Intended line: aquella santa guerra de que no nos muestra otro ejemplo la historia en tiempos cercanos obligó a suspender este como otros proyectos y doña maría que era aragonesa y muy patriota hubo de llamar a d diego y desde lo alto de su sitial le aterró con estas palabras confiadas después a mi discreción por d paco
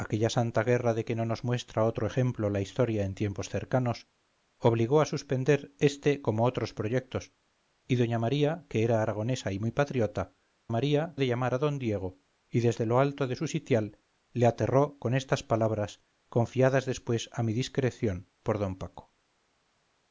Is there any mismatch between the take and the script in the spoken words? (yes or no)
yes